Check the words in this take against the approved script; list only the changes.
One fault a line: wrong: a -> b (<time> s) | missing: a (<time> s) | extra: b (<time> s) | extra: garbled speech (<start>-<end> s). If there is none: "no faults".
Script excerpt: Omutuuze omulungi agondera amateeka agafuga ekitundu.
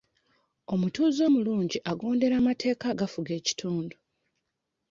no faults